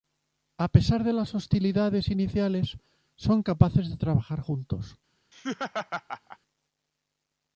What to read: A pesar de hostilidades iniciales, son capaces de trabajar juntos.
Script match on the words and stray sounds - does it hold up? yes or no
no